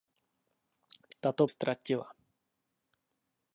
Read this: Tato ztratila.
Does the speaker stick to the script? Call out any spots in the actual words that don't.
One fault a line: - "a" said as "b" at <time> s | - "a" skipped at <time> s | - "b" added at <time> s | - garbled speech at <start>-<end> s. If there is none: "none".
none